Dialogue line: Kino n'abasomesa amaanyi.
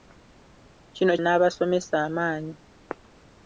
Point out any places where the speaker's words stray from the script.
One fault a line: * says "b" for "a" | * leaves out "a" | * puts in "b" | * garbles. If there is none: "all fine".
all fine